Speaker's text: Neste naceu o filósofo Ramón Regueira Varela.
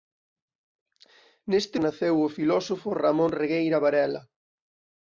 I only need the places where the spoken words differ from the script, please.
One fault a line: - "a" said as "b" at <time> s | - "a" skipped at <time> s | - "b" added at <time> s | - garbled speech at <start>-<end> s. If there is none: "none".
none